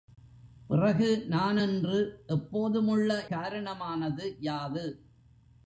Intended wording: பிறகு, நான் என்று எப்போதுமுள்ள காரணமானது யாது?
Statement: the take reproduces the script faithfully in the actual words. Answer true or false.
true